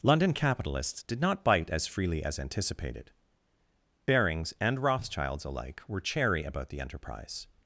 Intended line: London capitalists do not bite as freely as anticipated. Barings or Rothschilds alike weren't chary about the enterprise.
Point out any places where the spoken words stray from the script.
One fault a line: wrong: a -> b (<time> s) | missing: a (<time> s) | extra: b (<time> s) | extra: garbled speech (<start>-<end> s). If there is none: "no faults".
wrong: do -> did (1.0 s)
wrong: or -> and (4.6 s)
wrong: weren't -> were (5.9 s)